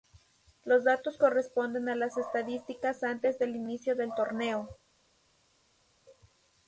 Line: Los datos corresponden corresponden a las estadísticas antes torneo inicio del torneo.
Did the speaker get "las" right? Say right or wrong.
right